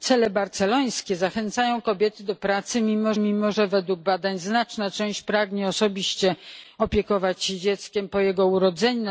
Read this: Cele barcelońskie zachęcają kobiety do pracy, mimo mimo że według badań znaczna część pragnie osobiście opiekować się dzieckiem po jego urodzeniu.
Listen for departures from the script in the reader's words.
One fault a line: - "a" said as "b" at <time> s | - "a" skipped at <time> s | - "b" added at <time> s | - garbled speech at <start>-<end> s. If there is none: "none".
none